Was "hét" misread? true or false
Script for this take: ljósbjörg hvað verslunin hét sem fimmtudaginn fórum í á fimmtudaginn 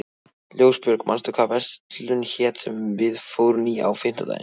false